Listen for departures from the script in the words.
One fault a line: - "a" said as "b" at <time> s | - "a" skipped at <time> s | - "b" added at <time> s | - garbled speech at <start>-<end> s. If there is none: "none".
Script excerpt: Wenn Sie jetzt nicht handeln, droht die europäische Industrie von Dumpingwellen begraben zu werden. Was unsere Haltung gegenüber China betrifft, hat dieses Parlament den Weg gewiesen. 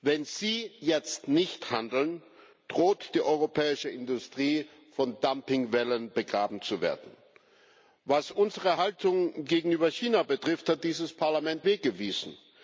- "den" skipped at 11.7 s